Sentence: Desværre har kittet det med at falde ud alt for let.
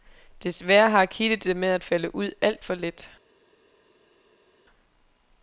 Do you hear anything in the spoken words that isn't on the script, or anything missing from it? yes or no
no